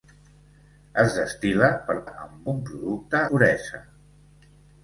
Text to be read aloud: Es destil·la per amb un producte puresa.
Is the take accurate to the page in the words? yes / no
yes